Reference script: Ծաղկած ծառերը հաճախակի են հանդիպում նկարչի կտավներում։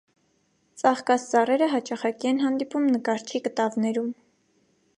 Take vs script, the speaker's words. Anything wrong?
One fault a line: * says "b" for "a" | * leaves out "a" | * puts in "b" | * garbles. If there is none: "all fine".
all fine